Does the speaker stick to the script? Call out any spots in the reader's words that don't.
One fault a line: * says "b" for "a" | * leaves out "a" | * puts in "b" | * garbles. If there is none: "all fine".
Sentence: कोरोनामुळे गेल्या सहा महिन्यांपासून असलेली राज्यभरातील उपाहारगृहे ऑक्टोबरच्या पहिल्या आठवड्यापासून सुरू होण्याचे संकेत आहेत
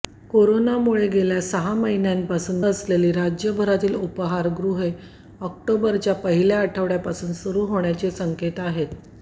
all fine